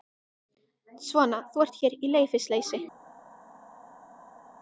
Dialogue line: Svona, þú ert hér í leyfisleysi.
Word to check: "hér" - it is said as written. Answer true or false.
true